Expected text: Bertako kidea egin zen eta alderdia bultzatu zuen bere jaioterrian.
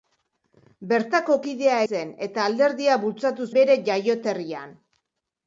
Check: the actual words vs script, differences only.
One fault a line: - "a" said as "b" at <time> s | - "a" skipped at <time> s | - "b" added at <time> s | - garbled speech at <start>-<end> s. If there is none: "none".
- "egin" skipped at 1.8 s
- "zuen" skipped at 3.5 s